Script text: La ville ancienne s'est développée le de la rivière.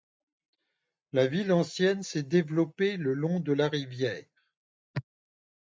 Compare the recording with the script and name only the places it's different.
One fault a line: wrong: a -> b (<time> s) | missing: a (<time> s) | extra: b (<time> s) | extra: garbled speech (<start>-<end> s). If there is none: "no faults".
extra: long (3.1 s)